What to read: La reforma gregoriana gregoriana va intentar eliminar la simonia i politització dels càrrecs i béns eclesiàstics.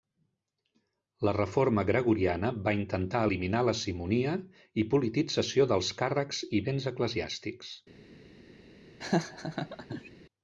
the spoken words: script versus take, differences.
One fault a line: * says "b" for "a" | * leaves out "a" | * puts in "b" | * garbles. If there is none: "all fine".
* leaves out "gregoriana"